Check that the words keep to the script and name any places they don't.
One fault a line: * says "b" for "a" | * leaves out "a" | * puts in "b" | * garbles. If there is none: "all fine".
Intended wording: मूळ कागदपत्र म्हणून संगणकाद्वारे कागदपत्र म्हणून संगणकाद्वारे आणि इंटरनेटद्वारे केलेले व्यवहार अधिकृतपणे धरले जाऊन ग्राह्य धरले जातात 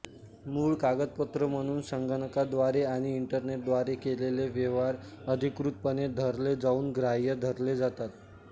* leaves out "कागदपत्र म्हणून संगणकाद्वारे"